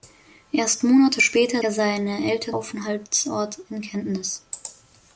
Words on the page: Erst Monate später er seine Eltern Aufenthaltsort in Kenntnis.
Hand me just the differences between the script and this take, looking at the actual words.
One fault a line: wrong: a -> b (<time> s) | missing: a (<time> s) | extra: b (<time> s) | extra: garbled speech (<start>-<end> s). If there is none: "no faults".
no faults